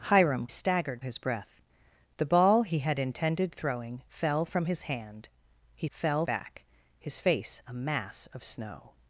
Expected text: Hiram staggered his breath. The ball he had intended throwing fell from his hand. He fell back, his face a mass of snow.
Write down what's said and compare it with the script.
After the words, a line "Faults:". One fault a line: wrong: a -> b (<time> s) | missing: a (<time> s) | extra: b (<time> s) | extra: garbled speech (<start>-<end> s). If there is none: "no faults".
Hiram staggered his breath. The ball he had intended throwing fell from his hand. He fell back, his face a mass of snow.
Faults:
no faults